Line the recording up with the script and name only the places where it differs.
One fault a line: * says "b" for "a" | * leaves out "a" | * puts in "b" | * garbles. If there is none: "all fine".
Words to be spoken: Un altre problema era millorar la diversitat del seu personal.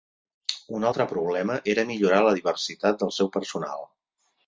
all fine